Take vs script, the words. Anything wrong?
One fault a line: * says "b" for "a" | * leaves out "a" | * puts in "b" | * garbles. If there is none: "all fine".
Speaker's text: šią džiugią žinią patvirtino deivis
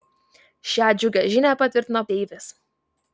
all fine